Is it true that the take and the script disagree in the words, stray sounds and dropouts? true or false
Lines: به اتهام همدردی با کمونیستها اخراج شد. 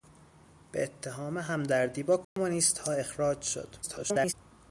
true